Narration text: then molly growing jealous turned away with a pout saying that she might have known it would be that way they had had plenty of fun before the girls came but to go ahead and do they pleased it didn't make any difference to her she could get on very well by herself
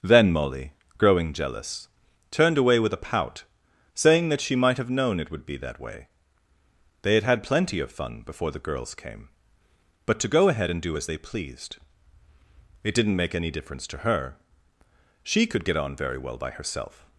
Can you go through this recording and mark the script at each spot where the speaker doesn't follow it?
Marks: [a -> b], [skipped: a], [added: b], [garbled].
then molly growing jealous turned away with a pout saying that she might have known it would be that way they had had plenty of fun before the girls came but to go ahead and do [added: as] they pleased it didn't make any difference to her she could get on very well by herself